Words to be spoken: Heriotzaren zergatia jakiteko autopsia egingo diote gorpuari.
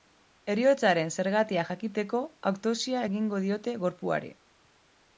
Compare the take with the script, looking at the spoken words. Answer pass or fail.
pass